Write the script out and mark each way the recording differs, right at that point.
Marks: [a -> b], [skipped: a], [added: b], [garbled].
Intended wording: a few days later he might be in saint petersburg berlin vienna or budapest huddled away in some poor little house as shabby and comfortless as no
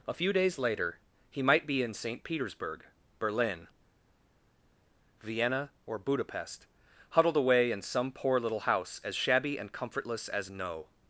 a few days later he might be in saint petersburg berlin vienna or budapest huddled away in some poor little house as shabby and comfortless as no